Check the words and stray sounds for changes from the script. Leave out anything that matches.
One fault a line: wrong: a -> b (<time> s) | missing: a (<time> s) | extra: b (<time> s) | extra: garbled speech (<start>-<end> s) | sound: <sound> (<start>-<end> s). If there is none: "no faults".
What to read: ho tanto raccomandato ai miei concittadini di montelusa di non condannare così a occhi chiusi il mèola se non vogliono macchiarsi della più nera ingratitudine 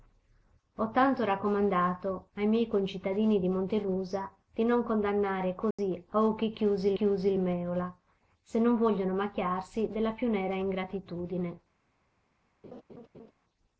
sound: dropout (5.7-5.8 s)
extra: chiusi (6.9 s)
sound: laugh (12.6-13.3 s)